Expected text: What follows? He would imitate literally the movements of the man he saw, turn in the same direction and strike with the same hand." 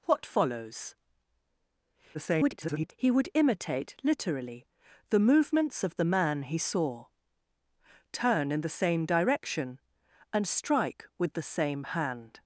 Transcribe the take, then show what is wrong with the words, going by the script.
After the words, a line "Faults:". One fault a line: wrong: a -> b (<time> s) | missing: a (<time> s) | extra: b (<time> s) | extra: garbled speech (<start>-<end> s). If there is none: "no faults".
What follows? [garbled] He would imitate literally the movements of the man he saw, turn in the same direction and strike with the same hand."
Faults:
extra: garbled speech (2.1-2.9 s)